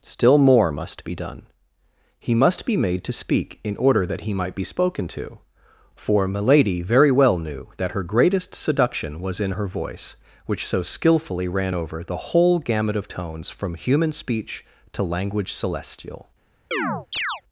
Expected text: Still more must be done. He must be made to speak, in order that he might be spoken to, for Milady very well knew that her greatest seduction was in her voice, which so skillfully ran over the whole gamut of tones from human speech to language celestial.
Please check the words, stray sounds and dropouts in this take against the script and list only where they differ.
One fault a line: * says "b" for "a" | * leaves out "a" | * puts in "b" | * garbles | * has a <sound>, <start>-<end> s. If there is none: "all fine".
* has a chirp, 16.7-17.4 s